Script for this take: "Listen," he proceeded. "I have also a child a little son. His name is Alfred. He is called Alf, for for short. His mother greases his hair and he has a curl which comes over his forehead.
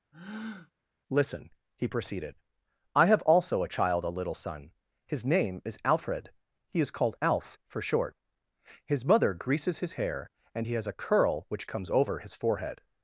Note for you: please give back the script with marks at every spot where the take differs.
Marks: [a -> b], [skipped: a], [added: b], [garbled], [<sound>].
[breath] "Listen," he proceeded. "I have also a child a little son. His name is Alfred. He is called Alf, for [skipped: for] short. His mother greases his hair and he has a curl which comes over his forehead.